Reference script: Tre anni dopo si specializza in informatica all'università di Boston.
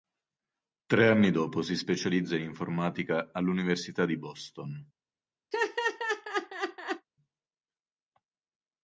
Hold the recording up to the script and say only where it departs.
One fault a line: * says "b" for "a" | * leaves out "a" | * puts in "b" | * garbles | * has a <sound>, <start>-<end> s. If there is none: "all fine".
* has a laugh, 5.5-7.1 s